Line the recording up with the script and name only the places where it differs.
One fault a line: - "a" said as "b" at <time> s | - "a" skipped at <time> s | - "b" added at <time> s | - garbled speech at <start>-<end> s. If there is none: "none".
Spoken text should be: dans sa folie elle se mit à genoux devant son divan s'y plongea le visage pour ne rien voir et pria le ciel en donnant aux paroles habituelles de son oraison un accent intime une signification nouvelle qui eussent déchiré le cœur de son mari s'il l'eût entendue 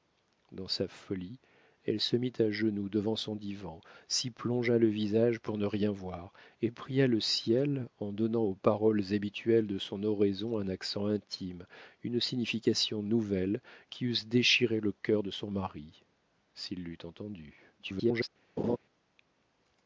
- garbled speech at 17.8-18.3 s